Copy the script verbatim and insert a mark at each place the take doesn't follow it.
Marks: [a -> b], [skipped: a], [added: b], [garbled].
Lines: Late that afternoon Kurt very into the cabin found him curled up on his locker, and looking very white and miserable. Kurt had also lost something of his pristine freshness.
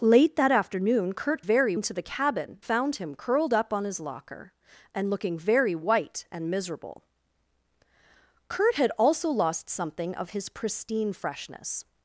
Late that afternoon Kurt very into the cabin found him curled up on his locker, and looking very white and miserable. Kurt had also lost something of his pristine freshness.